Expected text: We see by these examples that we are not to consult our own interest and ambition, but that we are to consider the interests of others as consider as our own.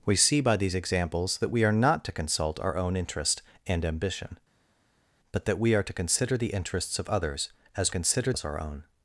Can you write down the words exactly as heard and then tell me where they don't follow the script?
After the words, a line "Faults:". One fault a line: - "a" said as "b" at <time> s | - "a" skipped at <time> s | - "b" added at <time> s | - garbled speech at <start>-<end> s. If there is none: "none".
We see by these examples that we are not to consult our own interest and ambition, but that we are to consider the interests of others as consider as our own.
Faults:
none